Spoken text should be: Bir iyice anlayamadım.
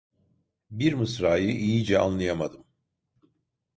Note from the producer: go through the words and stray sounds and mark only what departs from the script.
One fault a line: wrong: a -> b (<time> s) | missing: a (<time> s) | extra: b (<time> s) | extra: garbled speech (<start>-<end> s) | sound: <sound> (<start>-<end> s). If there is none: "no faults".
extra: mısrayı (0.9 s)